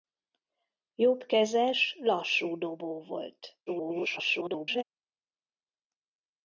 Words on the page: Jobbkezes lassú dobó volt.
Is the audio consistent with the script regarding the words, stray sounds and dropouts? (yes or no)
no